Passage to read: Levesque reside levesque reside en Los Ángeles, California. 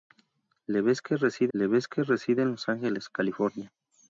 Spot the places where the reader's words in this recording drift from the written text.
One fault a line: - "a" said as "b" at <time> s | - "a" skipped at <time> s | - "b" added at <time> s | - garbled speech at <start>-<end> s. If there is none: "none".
none